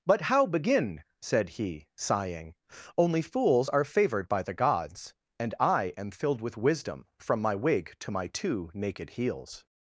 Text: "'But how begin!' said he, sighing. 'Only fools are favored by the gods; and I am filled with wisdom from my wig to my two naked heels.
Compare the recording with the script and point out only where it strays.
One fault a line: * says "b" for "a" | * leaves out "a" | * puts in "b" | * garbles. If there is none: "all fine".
all fine